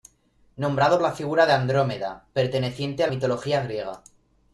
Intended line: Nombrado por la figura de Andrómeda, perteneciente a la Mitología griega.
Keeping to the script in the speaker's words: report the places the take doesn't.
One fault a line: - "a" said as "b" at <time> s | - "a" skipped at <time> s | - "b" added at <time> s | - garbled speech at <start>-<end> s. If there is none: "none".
- "por" skipped at 1.0 s
- "la" skipped at 3.1 s